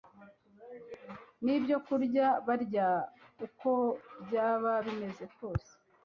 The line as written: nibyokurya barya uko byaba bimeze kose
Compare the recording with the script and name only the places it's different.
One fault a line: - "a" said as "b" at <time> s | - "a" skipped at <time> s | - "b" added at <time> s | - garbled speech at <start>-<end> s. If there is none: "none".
none